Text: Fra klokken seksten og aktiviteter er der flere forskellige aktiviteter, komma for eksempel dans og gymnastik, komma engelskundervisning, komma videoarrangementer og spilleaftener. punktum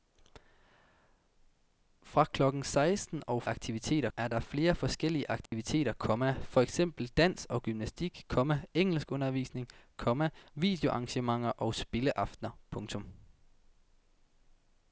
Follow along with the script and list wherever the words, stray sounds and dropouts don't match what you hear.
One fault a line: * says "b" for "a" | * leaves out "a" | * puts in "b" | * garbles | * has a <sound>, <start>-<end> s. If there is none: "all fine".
* has a dropout, 5.5-5.5 s